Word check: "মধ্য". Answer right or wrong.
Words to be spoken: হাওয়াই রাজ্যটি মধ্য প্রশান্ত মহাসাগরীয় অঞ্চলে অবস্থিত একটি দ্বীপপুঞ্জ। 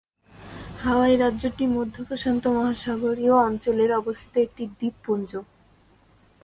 right